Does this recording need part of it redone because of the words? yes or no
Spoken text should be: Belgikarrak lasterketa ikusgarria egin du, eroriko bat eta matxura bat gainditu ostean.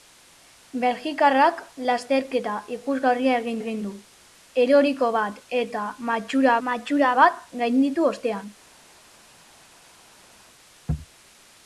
yes